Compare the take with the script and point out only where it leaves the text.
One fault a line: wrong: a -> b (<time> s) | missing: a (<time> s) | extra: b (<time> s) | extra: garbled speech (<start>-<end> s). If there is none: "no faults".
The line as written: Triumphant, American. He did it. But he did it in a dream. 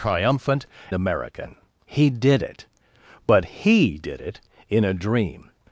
no faults